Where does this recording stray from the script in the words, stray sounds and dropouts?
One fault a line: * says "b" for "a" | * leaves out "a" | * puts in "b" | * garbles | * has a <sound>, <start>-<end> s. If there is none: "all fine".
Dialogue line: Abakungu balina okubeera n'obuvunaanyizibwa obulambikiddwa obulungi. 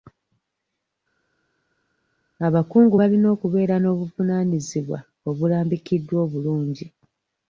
all fine